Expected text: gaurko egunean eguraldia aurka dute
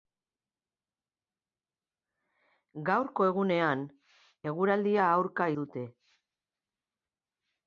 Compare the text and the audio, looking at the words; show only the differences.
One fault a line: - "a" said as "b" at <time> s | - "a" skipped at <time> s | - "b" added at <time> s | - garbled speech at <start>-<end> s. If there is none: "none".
none